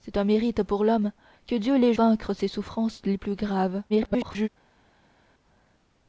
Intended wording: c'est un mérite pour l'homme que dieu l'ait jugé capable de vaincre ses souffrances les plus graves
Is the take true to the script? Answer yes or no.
no